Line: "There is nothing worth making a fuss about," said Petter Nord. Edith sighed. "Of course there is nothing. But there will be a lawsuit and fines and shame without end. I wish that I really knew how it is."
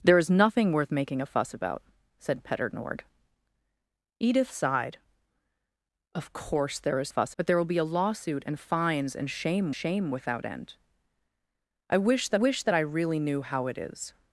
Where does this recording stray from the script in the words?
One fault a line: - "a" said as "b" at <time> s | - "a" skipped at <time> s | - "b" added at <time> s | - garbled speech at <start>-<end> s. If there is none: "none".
- "nothing" said as "fuss" at 7.1 s
- "shame" added at 9.7 s
- "wish that" added at 12.3 s